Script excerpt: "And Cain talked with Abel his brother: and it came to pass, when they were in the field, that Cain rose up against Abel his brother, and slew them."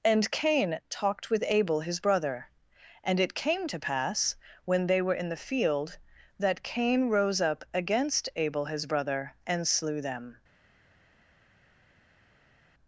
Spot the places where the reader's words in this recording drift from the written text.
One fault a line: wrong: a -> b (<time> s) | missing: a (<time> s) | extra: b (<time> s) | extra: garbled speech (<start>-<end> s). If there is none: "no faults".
no faults